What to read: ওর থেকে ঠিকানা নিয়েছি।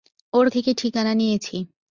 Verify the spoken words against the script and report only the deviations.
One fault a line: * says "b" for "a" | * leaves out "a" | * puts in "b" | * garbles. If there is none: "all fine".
all fine